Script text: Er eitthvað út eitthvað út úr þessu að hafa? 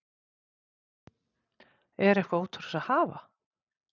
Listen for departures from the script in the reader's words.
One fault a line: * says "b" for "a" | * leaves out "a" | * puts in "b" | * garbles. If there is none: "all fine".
* leaves out "eitthvað út"